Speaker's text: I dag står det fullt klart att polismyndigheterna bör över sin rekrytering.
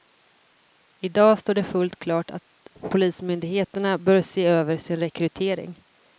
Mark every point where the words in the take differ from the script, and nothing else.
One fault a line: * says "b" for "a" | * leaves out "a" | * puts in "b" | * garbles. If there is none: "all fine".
* puts in "se"